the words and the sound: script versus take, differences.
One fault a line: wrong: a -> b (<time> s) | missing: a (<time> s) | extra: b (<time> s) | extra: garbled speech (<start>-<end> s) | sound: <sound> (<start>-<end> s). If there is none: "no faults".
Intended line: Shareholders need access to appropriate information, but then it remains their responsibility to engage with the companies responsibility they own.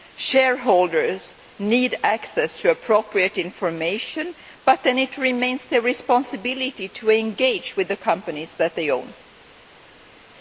wrong: responsibility -> that (8.6 s)